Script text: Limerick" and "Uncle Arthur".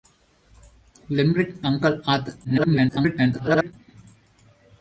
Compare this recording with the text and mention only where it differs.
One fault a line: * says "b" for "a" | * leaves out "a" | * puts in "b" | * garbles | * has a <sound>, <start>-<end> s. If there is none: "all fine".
* leaves out "and"
* garbles